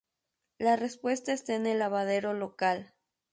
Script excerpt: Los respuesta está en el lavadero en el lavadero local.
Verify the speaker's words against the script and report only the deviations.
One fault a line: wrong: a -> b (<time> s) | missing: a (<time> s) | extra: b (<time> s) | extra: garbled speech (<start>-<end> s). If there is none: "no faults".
wrong: Los -> La (0.6 s)
missing: en el lavadero (2.3 s)